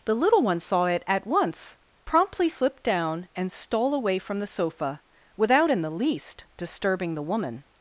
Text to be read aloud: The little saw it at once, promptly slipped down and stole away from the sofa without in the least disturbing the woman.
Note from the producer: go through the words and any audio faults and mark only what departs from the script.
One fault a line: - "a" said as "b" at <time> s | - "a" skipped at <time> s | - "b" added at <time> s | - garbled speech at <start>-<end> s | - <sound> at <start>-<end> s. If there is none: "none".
- "one" added at 0.4 s